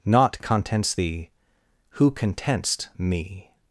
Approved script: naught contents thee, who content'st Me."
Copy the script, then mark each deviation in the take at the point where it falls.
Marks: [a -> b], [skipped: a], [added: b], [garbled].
naught contents thee, who content'st Me."